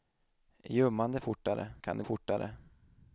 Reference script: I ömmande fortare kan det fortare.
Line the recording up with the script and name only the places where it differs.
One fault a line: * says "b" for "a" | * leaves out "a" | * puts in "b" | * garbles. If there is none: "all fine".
all fine